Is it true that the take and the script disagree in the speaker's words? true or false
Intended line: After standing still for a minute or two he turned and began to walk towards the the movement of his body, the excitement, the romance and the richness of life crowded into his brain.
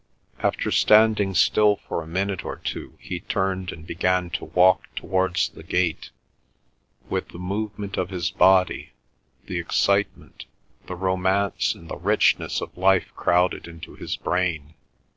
true